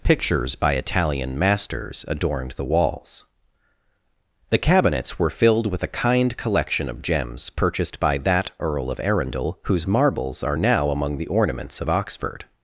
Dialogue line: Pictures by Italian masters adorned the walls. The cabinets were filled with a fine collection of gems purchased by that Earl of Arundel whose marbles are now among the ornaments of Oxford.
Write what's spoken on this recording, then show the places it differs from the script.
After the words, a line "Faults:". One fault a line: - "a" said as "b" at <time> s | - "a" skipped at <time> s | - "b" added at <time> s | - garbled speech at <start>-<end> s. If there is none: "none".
Pictures by Italian masters adorned the walls. The cabinets were filled with a kind collection of gems purchased by that Earl of Arundel whose marbles are now among the ornaments of Oxford.
Faults:
- "fine" said as "kind" at 5.9 s